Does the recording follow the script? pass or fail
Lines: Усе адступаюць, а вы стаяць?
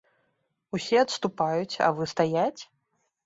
pass